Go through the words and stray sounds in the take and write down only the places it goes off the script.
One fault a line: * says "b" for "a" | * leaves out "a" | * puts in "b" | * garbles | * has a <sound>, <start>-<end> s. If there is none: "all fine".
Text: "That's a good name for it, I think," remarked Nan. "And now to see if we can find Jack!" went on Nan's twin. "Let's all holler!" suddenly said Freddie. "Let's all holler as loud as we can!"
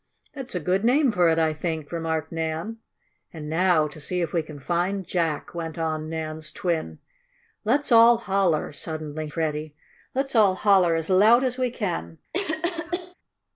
* leaves out "said"
* has a cough, 12.3-13.1 s